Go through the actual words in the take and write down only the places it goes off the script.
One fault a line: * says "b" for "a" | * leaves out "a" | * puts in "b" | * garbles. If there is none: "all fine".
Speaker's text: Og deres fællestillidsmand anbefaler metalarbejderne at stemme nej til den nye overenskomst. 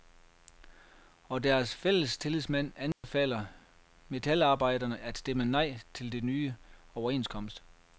all fine